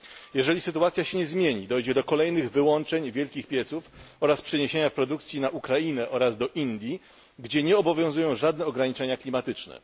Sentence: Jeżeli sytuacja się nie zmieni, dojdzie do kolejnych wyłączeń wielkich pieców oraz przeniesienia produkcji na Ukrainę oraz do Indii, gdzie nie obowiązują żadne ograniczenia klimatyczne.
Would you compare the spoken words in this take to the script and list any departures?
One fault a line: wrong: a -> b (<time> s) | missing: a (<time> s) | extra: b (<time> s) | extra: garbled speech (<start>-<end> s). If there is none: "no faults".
no faults